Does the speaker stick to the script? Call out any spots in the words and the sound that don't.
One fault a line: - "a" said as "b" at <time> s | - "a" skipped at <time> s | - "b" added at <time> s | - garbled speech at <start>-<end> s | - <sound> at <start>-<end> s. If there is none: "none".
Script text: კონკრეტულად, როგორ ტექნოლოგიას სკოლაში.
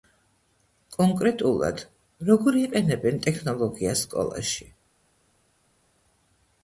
- "იყენებენ" added at 2.6 s